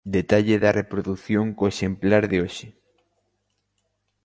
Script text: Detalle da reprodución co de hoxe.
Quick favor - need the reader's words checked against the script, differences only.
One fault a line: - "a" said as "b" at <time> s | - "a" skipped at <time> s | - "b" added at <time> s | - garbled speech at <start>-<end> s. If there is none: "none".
- "exemplar" added at 1.7 s